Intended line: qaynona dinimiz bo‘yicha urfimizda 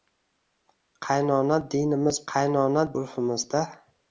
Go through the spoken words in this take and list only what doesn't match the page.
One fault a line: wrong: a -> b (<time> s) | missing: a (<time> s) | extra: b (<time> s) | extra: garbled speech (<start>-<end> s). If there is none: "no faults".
wrong: bo‘yicha -> qaynona (2.3 s)